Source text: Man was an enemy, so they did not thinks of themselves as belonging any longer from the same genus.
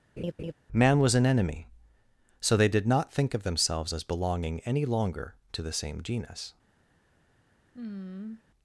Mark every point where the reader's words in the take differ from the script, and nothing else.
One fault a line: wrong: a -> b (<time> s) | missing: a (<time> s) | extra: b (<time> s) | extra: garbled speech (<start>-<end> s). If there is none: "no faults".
wrong: thinks -> think (3.1 s)
wrong: from -> to (5.5 s)